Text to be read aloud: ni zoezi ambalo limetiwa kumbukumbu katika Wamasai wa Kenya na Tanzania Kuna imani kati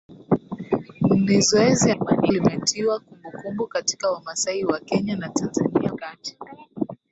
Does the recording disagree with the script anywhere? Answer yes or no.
yes